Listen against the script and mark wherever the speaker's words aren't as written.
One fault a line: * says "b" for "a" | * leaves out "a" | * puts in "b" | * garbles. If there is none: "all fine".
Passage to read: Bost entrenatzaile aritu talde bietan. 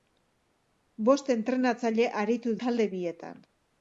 all fine